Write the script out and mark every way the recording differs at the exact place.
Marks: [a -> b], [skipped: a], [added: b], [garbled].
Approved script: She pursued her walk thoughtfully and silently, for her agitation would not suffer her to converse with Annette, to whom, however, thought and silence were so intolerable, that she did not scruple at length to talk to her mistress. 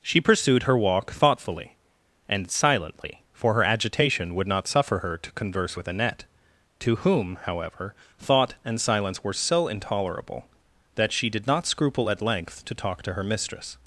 She pursued her walk thoughtfully and silently, for her agitation would not suffer her to converse with Annette, to whom, however, thought and silence were so intolerable, that she did not scruple at length to talk to her mistress.